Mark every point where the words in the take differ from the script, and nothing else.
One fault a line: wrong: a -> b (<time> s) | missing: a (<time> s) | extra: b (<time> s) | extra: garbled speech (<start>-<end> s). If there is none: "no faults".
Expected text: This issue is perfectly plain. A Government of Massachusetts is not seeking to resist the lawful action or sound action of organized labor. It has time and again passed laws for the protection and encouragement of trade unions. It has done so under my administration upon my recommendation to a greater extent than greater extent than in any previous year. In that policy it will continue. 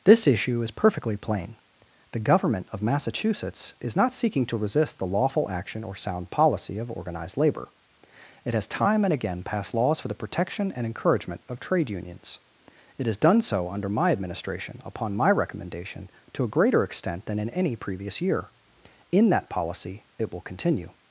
wrong: A -> The (2.1 s)
wrong: action -> policy (6.3 s)
missing: greater extent than (17.4 s)